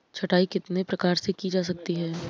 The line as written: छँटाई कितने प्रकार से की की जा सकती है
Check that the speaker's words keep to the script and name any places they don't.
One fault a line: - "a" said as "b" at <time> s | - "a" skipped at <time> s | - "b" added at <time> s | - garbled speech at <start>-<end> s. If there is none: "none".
- "की" skipped at 1.5 s